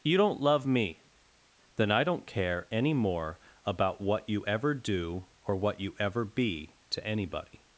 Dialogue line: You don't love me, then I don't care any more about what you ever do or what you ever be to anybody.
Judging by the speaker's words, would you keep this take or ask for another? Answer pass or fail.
pass